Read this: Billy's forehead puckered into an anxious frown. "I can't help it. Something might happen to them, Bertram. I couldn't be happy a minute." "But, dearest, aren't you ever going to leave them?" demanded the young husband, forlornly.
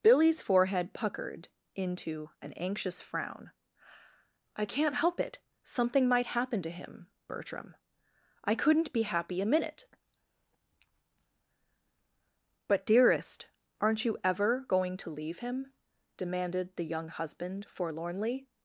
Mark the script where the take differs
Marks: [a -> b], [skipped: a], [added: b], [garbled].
Billy's forehead puckered into an anxious frown. "I can't help it. Something might happen to [them, -> him] Bertram. I couldn't be happy a minute." "But, dearest, aren't you ever going to leave [them?" -> him] demanded the young husband, forlornly.